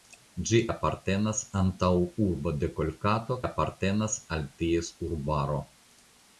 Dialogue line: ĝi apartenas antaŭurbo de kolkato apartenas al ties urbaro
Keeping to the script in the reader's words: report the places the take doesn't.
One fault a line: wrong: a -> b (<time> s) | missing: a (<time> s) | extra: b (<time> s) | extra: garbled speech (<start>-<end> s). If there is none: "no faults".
no faults